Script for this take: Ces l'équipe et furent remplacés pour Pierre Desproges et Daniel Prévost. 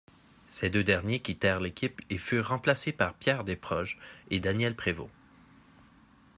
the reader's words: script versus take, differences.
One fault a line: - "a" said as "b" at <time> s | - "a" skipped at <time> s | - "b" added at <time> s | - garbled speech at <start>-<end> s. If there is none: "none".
- "deux derniers quittèrent" added at 0.7 s
- "pour" said as "par" at 2.9 s